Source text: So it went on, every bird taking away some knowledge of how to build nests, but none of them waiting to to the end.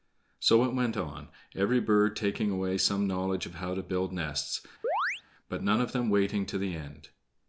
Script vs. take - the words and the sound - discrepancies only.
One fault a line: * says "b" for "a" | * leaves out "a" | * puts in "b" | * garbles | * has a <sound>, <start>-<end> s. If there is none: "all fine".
* has a chirp, 4.8-5.2 s
* leaves out "to"